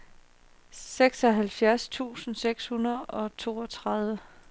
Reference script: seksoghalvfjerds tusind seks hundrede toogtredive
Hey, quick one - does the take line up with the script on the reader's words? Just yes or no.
no